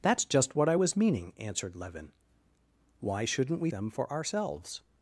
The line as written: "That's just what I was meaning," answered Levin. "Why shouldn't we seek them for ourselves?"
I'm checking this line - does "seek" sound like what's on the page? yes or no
no